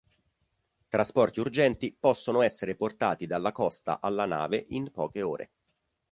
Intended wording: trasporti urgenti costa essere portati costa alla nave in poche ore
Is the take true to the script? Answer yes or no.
no